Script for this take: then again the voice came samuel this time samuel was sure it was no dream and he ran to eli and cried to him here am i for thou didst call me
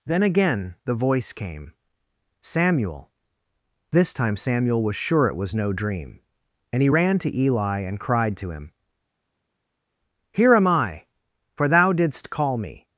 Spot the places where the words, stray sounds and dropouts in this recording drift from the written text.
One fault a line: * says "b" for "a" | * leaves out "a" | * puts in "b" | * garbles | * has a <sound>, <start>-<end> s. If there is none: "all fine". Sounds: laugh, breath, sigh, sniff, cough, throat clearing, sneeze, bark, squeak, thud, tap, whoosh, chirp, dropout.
all fine